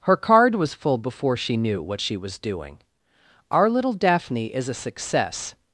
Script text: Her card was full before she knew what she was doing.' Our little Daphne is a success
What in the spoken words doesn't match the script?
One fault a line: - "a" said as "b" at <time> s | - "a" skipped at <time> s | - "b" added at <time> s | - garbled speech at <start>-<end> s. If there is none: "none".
none